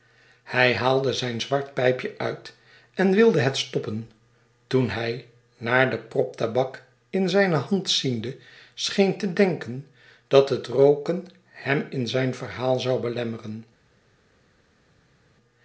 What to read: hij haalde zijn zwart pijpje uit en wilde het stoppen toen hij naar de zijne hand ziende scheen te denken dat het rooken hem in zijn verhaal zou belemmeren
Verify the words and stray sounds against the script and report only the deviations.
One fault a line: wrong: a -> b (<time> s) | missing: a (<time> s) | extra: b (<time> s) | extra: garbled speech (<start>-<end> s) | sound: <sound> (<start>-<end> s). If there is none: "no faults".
extra: prop tabak in (6.0 s)